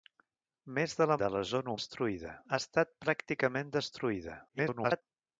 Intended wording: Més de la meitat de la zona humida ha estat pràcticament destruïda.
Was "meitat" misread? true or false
true